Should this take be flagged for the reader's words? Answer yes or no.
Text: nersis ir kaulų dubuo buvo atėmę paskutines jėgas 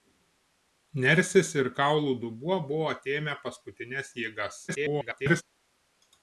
yes